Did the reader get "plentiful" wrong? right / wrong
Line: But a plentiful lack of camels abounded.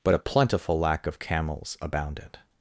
right